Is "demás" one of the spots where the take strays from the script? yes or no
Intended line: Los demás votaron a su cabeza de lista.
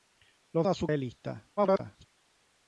yes